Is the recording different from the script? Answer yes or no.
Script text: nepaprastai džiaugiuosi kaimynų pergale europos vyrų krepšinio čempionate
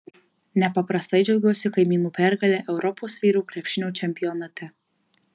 no